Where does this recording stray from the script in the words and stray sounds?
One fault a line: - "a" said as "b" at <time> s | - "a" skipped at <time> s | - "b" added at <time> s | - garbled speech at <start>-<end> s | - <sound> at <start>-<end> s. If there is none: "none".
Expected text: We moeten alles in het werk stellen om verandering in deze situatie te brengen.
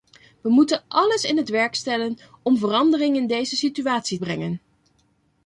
- "te" skipped at 4.2 s